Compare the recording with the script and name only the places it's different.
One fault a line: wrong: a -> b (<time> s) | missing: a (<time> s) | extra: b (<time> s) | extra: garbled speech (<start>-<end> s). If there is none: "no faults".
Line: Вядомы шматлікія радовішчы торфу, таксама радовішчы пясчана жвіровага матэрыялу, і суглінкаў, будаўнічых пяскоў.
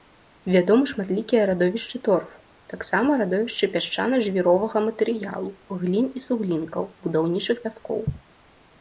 extra: глін (5.8 s)